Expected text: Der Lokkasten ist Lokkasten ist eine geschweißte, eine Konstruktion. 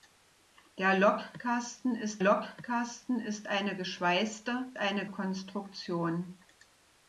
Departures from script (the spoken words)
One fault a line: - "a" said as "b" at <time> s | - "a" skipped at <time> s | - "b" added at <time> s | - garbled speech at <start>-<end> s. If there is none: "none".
none